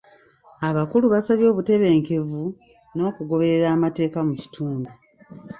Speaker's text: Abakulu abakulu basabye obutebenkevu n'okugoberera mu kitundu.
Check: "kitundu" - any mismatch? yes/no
no